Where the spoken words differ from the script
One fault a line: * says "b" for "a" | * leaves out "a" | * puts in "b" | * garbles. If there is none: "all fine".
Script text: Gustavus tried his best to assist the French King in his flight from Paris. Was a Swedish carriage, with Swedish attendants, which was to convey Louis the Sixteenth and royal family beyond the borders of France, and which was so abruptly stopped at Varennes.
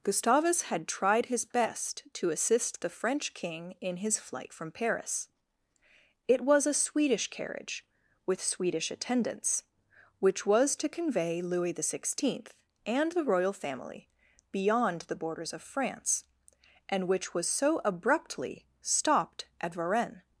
* puts in "had"
* puts in "It"
* puts in "the"